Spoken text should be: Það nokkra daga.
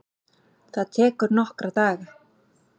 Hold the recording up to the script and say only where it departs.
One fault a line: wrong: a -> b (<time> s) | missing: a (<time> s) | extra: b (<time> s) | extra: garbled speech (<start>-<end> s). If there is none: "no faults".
extra: tekur (1.0 s)